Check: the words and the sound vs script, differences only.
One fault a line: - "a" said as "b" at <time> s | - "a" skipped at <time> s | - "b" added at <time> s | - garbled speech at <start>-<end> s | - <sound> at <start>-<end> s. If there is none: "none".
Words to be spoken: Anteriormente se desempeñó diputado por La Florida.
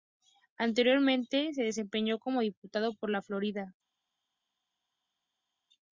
- "como" added at 2.2 s